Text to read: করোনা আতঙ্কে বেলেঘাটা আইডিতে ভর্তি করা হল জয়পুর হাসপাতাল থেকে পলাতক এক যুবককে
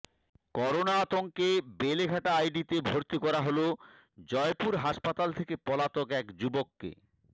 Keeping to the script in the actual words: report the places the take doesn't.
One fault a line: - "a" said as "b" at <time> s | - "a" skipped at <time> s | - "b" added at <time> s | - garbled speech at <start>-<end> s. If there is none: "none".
none